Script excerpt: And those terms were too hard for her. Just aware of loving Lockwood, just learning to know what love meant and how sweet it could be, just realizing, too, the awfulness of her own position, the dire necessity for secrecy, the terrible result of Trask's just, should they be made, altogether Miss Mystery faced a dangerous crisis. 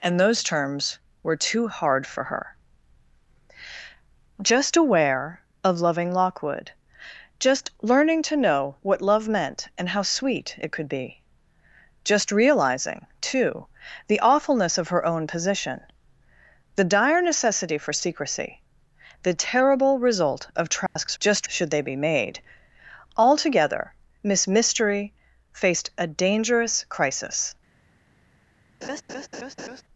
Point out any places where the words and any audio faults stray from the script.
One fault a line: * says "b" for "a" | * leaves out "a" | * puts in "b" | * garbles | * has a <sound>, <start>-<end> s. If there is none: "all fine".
* has a dropout, 20.9-21.0 s
* has a laugh, 28.8-29.8 s